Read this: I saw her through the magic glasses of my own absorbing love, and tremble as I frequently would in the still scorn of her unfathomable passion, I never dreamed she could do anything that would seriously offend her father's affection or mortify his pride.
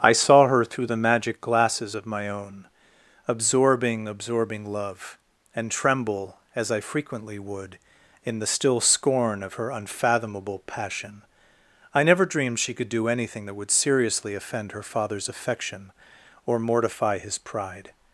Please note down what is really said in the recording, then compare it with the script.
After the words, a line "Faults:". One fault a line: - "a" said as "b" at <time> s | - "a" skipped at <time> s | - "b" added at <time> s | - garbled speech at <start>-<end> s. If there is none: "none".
I saw her through the magic glasses of my own absorbing absorbing love, and tremble as I frequently would in the still scorn of her unfathomable passion, I never dreamed she could do anything that would seriously offend her father's affection or mortify his pride.
Faults:
- "absorbing" added at 4.1 s